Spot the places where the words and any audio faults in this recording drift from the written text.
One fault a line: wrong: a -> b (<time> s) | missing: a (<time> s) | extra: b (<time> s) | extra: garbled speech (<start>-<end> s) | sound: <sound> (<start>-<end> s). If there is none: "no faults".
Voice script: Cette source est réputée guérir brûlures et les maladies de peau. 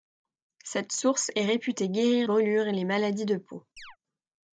sound: chirp (3.8-4.0 s)